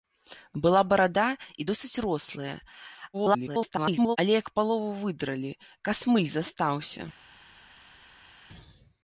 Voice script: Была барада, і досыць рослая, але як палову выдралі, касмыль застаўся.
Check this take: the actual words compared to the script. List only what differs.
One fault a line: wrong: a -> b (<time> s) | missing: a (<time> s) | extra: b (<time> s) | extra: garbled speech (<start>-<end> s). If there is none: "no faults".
extra: garbled speech (3.1-4.2 s)